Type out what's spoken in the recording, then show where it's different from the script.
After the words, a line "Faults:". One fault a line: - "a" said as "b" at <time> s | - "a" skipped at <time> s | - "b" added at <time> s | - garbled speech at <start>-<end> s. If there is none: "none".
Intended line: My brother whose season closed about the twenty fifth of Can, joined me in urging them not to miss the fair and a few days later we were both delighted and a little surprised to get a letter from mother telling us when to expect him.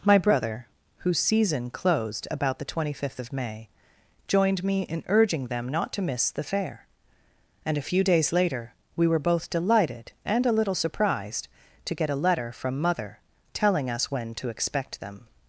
My brother whose season closed about the twenty fifth of May, joined me in urging them not to miss the fair and a few days later we were both delighted and a little surprised to get a letter from mother telling us when to expect them.
Faults:
- "Can" said as "May" at 3.3 s
- "him" said as "them" at 15.0 s